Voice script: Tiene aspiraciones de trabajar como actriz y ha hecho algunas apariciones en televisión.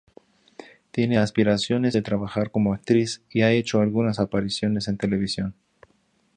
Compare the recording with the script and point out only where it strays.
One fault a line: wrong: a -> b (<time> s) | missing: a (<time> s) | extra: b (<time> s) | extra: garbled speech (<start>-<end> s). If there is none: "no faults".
no faults